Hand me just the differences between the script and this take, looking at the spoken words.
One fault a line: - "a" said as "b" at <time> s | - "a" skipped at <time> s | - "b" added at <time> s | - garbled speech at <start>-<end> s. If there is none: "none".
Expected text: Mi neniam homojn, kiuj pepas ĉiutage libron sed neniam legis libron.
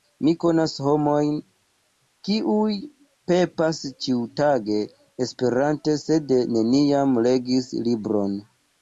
- "neniam" said as "konas" at 0.4 s
- "libron" said as "esperante" at 5.3 s